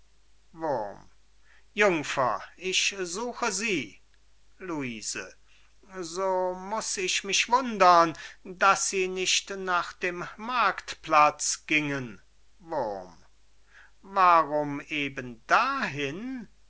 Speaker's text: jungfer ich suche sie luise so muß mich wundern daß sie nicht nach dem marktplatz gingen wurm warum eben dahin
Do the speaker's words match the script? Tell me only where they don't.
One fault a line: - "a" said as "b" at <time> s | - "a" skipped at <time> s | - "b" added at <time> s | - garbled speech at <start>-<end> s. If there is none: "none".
- "ich" added at 7.0 s